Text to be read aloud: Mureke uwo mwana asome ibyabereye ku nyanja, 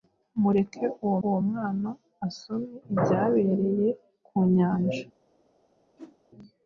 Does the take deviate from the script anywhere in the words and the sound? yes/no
yes